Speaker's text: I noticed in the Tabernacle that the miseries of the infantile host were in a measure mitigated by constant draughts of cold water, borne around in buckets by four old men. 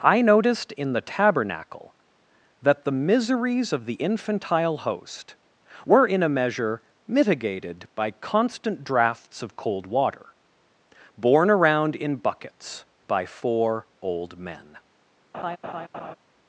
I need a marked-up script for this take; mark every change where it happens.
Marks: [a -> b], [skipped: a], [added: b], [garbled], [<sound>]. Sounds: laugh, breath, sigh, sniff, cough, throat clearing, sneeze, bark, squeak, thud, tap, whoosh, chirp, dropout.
I noticed in the Tabernacle that the miseries of the infantile host were in a measure mitigated by constant draughts of cold water, borne around in buckets by four old men. [laugh]